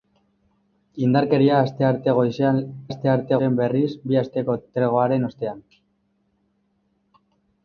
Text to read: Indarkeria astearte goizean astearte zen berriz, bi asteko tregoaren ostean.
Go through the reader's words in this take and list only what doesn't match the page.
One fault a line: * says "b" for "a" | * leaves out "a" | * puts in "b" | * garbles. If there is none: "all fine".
all fine